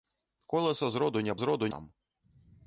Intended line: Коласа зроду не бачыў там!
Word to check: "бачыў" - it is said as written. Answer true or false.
false